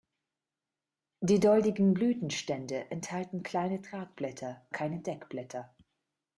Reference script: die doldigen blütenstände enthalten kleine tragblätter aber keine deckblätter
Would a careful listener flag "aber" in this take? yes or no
yes